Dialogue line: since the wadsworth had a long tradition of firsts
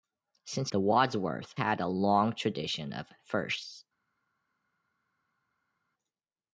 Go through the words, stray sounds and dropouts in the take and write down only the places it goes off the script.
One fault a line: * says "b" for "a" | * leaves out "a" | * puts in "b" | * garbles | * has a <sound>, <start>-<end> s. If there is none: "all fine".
all fine